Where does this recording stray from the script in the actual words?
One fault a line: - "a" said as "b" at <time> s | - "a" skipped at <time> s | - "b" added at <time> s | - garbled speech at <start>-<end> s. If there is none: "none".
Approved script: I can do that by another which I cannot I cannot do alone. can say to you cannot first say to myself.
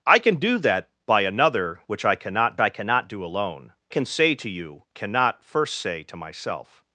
none